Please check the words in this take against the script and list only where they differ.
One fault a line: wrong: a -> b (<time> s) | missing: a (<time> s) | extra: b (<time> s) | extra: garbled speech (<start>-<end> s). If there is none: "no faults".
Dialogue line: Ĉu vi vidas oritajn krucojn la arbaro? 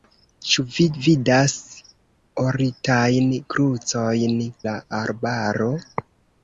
no faults